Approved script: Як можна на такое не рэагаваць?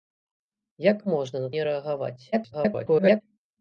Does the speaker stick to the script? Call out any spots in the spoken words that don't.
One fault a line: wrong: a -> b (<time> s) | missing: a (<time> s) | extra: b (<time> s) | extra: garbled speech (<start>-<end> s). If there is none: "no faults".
missing: такое (1.5 s)
extra: garbled speech (2.3-3.2 s)